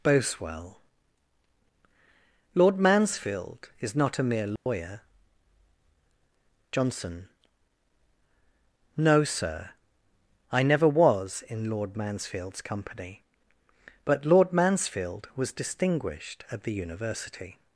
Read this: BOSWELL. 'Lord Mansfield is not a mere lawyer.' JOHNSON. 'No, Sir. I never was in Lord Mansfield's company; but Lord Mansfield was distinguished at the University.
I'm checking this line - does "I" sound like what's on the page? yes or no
yes